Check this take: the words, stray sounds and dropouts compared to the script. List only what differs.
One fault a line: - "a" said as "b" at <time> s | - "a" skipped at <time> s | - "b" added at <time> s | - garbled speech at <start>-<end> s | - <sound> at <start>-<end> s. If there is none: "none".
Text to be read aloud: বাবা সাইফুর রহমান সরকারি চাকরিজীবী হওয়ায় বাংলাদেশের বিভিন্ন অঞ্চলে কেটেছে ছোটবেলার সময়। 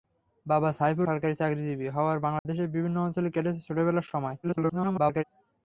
- "রহমান" skipped at 1.1 s
- dropout at 2.4-2.5 s
- garbled speech at 4.4-5.2 s